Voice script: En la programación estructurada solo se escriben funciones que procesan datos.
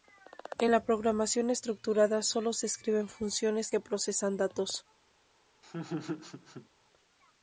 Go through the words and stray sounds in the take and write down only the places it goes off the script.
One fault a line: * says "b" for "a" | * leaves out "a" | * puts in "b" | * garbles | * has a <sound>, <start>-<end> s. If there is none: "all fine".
* has a laugh, 5.6-6.7 s